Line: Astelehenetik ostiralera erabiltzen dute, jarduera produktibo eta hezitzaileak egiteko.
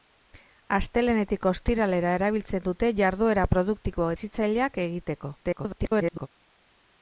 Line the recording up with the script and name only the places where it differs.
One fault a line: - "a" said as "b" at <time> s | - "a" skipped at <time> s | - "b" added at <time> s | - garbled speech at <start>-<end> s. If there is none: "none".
- "eta" skipped at 4.1 s
- garbled speech at 5.4-6.3 s